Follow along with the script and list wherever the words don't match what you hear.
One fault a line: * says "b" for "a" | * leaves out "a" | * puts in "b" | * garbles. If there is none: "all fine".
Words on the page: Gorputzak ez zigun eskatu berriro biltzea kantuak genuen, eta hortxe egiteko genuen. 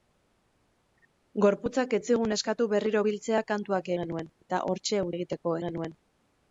all fine